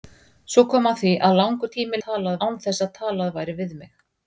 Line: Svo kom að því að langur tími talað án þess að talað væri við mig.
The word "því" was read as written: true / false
true